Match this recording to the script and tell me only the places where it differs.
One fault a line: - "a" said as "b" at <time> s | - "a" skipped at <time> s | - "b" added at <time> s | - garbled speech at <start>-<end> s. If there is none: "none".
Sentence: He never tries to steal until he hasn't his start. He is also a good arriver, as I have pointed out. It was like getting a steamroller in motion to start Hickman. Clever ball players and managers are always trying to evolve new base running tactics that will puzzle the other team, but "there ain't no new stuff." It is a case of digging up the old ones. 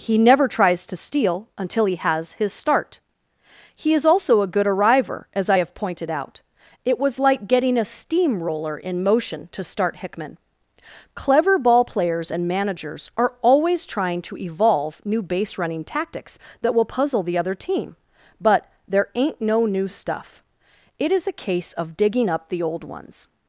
- "hasn't" said as "has" at 1.9 s